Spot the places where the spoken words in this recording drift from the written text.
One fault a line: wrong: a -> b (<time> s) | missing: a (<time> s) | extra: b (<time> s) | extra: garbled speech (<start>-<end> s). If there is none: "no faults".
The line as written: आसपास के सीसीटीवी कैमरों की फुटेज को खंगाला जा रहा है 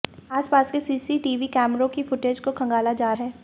missing: रहा (3.1 s)